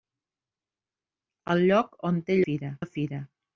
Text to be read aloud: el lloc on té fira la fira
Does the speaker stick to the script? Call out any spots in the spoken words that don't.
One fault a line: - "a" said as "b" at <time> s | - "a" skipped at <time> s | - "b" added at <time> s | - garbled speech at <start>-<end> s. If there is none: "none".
none